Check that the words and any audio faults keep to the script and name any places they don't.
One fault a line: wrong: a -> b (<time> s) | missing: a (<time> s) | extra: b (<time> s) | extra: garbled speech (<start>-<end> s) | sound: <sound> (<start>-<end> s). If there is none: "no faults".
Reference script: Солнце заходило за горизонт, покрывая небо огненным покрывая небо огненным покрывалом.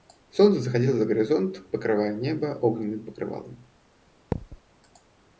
missing: покрывая небо огненным (3.0 s)
sound: thud (4.3-4.6 s)